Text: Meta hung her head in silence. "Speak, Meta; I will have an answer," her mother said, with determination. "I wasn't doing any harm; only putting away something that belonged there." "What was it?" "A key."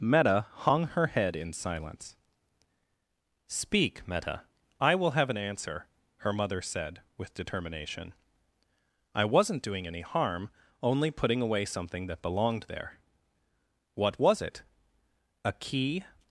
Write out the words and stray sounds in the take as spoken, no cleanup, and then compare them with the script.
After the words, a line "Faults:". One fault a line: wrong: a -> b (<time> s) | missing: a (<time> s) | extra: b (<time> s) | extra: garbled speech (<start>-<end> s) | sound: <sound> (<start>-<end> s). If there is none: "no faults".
Meta hung her head in silence. "Speak, Meta; I will have an answer," her mother said, with determination. "I wasn't doing any harm; only putting away something that belonged there." "What was it?" "A key."
Faults:
no faults